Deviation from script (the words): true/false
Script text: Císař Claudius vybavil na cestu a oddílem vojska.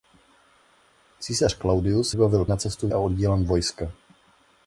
false